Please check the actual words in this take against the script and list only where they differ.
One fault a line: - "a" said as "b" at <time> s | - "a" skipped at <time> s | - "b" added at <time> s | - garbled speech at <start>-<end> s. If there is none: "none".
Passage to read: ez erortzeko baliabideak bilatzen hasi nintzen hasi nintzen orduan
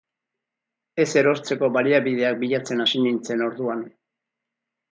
- "hasi nintzen" skipped at 3.5 s